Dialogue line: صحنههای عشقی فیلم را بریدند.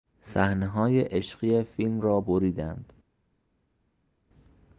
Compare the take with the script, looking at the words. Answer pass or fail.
pass